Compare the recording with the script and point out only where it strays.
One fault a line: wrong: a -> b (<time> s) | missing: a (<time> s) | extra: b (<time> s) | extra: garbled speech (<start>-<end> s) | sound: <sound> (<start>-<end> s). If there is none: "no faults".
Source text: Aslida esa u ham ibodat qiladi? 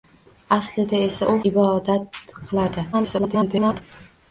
missing: ham (1.3 s)
extra: garbled speech (2.9-3.8 s)